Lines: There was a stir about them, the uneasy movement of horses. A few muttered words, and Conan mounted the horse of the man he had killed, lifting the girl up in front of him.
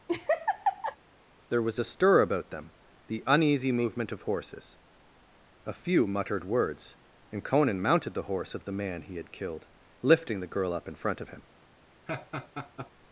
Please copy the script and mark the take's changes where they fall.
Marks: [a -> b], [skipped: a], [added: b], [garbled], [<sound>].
[laugh] There was a stir about them, the uneasy movement of horses. A few muttered words, and Conan mounted the horse of the man he had killed, lifting the girl up in front of him. [laugh]